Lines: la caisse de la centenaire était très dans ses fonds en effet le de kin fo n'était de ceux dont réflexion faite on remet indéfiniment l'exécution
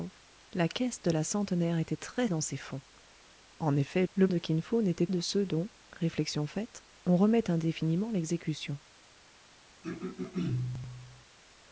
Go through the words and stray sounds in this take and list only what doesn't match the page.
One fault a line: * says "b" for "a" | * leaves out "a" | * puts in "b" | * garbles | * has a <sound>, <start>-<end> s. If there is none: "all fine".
* has a throat clearing, 9.8-11.3 s